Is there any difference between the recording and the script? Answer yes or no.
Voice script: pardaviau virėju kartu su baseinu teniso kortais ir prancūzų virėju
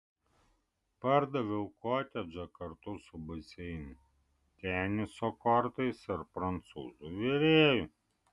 yes